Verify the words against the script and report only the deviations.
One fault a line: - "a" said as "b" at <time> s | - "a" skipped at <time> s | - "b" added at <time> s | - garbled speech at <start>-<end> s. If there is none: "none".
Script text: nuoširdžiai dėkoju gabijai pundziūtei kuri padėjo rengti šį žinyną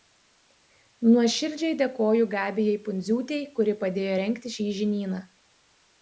none